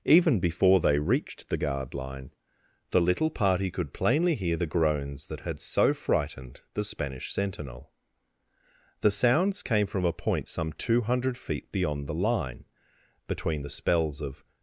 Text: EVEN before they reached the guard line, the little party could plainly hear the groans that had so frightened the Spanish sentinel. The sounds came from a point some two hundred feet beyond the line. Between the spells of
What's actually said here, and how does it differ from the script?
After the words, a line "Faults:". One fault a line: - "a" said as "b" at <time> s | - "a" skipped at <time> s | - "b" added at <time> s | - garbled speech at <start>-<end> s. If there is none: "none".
EVEN before they reached the guard line, the little party could plainly hear the groans that had so frightened the Spanish sentinel. The sounds came from a point some two hundred feet beyond the line. Between the spells of
Faults:
none